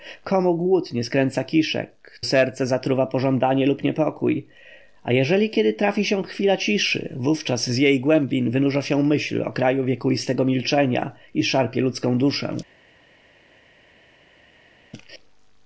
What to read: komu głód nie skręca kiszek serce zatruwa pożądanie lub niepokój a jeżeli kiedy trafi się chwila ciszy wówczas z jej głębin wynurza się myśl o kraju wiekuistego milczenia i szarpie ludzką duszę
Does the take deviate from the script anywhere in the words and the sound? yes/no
no